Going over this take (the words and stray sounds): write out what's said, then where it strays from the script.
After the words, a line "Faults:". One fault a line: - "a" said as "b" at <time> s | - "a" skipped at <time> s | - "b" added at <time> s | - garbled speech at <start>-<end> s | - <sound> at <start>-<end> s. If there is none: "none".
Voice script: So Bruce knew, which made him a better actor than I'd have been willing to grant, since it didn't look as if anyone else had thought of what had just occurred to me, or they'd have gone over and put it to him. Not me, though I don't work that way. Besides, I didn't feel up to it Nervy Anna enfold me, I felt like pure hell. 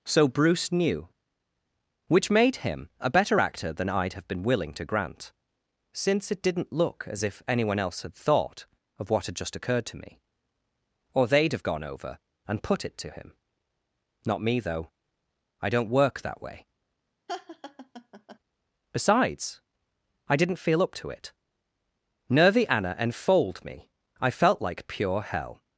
So Bruce knew, which made him a better actor than I'd have been willing to grant, since it didn't look as if anyone else had thought of what had just occurred to me, or they'd have gone over and put it to him. Not me, though I don't work that way. Besides, I didn't feel up to it Nervy Anna enfold me, I felt like pure hell.
Faults:
- laugh at 17.3-18.4 s